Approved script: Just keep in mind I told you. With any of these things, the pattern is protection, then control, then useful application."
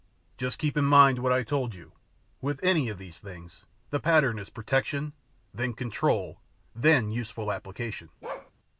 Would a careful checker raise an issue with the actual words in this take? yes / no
yes